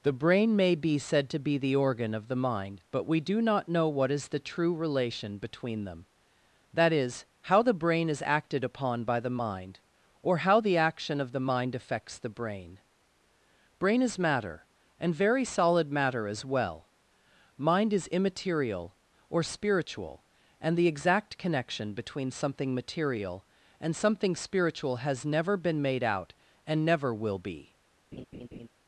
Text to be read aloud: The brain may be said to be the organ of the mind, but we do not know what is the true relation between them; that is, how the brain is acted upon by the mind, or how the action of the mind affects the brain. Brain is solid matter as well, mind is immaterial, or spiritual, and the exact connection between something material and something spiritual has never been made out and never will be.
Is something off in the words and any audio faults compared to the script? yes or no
yes